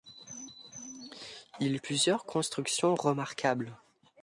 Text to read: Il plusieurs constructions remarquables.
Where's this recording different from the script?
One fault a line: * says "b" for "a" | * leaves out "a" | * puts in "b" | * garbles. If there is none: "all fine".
all fine